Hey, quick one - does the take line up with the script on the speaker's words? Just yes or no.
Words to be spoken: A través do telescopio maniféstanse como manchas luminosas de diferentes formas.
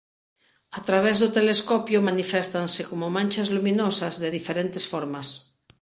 yes